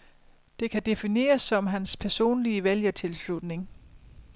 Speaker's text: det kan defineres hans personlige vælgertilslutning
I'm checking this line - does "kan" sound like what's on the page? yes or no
yes